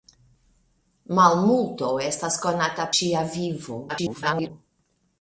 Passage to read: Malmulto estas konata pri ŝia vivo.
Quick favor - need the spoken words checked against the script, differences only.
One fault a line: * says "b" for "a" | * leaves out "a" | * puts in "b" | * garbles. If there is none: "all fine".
* leaves out "pri"
* garbles